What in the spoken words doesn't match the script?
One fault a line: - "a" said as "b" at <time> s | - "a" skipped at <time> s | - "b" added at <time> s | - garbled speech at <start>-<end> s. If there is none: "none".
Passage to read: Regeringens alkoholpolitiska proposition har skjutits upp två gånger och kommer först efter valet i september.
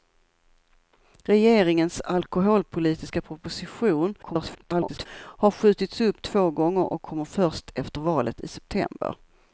- garbled speech at 4.2-5.1 s